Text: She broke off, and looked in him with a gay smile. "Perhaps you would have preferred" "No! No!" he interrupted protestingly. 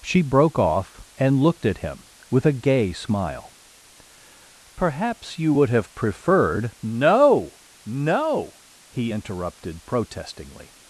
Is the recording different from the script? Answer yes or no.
yes